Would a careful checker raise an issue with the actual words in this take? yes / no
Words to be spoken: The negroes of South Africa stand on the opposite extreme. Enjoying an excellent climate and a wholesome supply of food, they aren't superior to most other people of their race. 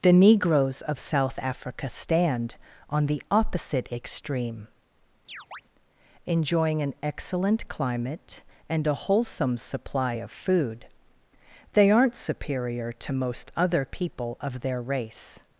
no